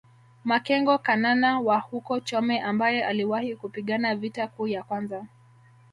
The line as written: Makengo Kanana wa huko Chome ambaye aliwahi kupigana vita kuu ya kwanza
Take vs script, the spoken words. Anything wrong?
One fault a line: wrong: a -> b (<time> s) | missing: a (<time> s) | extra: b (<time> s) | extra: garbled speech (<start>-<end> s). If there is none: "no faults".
no faults